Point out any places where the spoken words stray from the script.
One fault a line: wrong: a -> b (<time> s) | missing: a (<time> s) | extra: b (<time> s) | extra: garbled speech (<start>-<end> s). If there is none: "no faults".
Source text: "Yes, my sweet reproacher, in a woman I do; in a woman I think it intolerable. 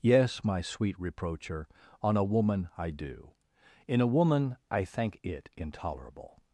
wrong: in -> on (2.0 s)